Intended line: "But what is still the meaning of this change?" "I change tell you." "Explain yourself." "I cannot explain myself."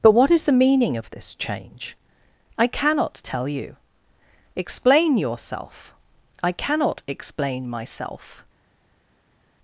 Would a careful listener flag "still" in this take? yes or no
yes